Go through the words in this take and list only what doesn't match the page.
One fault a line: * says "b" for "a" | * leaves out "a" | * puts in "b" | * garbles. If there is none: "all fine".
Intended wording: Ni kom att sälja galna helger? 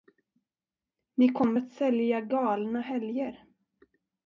all fine